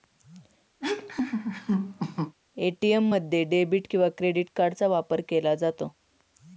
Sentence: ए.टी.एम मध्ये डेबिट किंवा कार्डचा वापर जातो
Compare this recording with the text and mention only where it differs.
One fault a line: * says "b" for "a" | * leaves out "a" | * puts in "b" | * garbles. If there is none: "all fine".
* puts in "क्रेडिट"
* puts in "केला"